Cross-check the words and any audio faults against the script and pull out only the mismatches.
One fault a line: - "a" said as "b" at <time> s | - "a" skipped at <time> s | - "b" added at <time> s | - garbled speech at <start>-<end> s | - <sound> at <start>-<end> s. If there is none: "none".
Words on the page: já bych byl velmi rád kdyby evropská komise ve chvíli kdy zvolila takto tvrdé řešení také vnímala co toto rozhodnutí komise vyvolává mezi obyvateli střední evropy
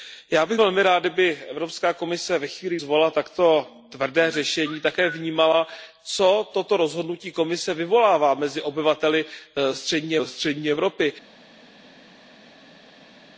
- "byl" skipped at 0.6 s
- "kdy" skipped at 2.8 s
- "střední" added at 10.2 s